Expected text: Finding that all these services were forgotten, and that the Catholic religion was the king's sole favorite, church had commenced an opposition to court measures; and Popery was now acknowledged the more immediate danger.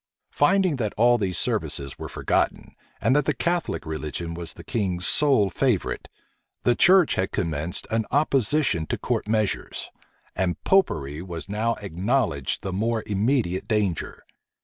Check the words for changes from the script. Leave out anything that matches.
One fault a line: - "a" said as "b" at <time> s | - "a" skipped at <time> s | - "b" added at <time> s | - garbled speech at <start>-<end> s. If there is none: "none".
- "the" added at 6.6 s